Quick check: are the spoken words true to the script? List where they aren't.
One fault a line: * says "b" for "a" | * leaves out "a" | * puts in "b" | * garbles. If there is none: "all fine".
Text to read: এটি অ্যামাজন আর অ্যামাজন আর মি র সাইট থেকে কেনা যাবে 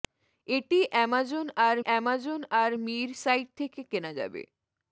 all fine